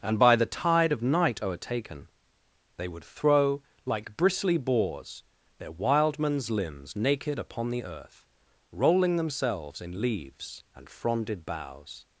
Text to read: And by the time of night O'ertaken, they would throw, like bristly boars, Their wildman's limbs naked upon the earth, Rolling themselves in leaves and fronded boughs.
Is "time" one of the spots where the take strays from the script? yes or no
yes